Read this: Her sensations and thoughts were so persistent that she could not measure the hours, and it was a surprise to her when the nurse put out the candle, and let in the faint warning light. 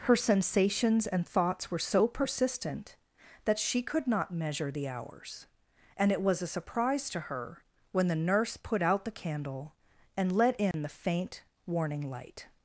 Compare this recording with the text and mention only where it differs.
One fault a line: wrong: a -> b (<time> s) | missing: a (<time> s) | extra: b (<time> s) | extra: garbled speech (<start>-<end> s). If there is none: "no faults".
no faults